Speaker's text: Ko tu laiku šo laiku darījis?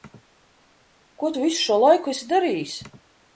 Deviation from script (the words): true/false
true